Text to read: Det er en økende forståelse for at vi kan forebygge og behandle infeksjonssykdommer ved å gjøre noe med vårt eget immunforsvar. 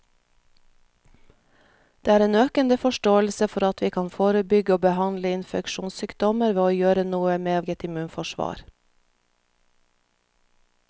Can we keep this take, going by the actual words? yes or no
no